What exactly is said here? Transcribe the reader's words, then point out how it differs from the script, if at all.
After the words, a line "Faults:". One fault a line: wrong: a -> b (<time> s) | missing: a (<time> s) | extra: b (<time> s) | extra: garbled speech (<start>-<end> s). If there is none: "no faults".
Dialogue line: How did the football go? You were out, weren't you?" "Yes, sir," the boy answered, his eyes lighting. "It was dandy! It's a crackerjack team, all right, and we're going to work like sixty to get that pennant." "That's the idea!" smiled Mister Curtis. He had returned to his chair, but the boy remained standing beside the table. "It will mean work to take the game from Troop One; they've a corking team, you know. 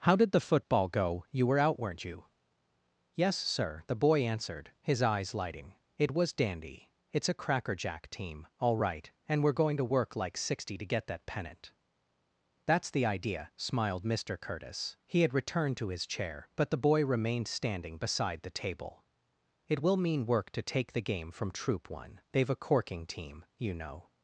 How did the football go? You were out, weren't you?" "Yes, sir," the boy answered, his eyes lighting. "It was dandy! It's a crackerjack team, all right, and we're going to work like sixty to get that pennant." "That's the idea!" smiled Mister Curtis. He had returned to his chair, but the boy remained standing beside the table. "It will mean work to take the game from Troop One; they've a corking team, you know.
Faults:
no faults